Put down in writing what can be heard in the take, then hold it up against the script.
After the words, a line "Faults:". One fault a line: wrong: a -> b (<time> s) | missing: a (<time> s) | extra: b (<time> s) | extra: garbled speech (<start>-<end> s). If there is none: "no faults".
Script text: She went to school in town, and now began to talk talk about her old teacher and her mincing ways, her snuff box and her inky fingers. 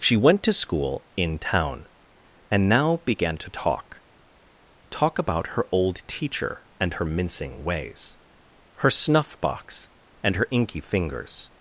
She went to school in town, and now began to talk talk about her old teacher and her mincing ways, her snuff box and her inky fingers.
Faults:
no faults